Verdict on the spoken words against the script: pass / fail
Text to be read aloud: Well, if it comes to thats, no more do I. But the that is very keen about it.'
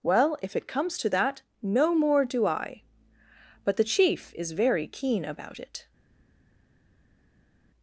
fail